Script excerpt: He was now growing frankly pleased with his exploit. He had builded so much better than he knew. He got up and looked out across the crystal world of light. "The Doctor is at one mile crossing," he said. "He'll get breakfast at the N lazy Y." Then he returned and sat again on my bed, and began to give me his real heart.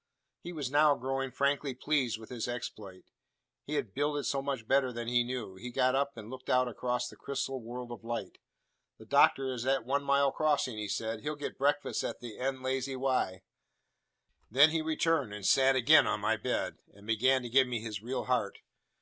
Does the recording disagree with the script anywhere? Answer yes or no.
no